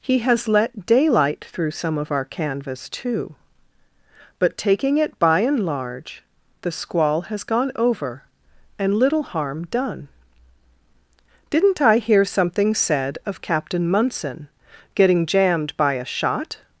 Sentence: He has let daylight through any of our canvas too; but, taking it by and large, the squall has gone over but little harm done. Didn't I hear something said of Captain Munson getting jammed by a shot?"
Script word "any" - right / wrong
wrong